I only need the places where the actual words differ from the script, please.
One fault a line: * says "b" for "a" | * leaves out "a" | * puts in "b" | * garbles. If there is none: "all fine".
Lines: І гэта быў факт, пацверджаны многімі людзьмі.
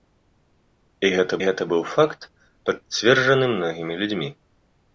* puts in "гэта"